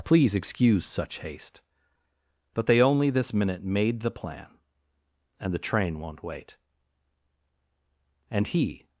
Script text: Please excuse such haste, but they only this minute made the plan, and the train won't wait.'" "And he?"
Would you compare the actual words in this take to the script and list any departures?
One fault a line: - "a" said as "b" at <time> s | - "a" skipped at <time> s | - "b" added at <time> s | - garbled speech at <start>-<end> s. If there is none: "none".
none